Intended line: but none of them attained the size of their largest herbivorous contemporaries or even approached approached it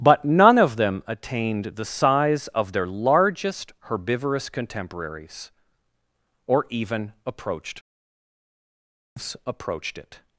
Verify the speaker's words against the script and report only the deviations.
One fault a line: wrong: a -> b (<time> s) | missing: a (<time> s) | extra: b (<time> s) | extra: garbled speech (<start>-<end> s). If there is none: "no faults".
no faults